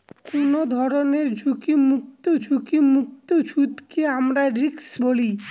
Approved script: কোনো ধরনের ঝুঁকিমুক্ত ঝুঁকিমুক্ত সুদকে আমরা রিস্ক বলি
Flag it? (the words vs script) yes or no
no